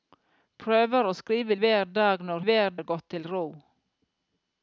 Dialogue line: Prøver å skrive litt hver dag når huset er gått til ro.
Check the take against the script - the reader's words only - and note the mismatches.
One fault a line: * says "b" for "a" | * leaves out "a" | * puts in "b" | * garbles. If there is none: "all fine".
* leaves out "litt"
* says "hver" for "huset"